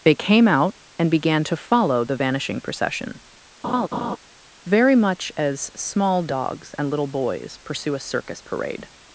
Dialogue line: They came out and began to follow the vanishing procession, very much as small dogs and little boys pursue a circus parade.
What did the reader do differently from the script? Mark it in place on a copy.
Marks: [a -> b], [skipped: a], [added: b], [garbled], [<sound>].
They came out and began to follow the vanishing procession, [laugh] very much as small dogs and little boys pursue a circus parade.